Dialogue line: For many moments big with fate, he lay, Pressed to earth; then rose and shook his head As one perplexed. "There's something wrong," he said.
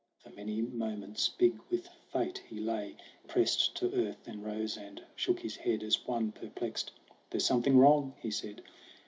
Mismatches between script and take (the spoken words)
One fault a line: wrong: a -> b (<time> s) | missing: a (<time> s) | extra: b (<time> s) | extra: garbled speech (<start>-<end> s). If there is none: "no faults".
no faults